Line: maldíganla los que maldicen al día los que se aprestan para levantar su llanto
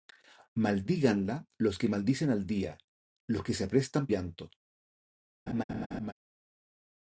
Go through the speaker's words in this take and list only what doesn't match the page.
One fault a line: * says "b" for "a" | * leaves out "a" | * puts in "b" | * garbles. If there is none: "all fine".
* leaves out "para levantar su"